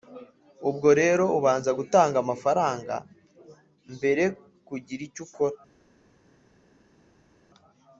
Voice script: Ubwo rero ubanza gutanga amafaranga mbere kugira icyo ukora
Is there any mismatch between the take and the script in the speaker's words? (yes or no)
no